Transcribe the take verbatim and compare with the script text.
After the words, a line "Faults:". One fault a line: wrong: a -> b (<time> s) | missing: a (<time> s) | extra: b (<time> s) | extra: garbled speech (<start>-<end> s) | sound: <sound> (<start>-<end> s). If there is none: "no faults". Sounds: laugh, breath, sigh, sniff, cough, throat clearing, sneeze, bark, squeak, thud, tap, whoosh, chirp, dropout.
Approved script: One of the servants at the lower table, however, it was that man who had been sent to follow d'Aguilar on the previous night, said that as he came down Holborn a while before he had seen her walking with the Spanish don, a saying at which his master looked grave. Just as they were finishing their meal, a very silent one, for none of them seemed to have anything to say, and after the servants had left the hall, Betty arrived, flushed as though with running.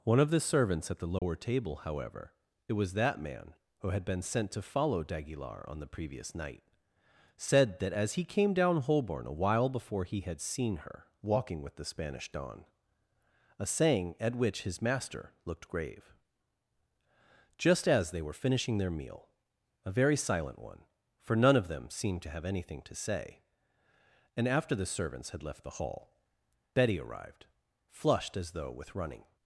One of the servants at the lower table, however, it was that man who had been sent to follow d'Aguilar on the previous night, said that as he came down Holborn a while before he had seen her walking with the Spanish don, a saying at which his master looked grave. Just as they were finishing their meal, a very silent one, for none of them seemed to have anything to say, and after the servants had left the hall, Betty arrived, flushed as though with running.
Faults:
sound: dropout (1.2-1.2 s)